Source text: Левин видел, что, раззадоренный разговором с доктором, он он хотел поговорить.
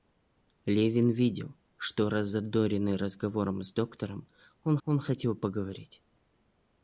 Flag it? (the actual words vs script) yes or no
no